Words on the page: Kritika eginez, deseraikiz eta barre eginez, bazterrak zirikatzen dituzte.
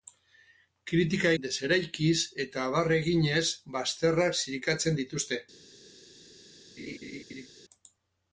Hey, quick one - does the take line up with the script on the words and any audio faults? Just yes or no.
no